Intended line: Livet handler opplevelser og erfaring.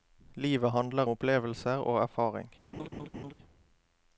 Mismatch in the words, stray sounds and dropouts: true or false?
true